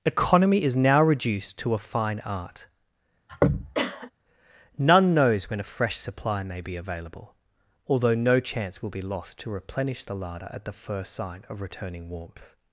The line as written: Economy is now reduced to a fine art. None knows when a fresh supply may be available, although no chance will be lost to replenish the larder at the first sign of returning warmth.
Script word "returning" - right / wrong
right